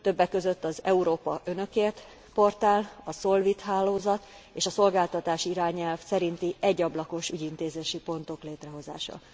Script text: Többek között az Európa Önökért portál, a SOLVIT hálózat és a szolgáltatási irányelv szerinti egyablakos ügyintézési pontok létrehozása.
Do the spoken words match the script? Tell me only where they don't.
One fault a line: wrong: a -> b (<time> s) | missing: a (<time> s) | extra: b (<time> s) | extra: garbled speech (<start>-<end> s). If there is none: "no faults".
no faults